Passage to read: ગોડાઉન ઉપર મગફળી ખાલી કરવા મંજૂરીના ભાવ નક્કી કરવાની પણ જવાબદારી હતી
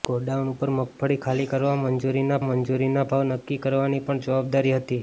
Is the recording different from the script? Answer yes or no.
yes